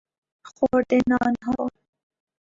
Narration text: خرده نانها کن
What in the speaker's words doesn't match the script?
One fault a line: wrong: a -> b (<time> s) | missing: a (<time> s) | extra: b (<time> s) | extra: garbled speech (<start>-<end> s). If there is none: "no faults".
no faults